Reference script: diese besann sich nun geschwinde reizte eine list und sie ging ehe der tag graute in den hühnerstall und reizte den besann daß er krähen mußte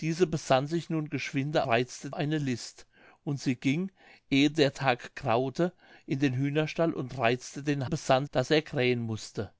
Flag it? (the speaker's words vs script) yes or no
no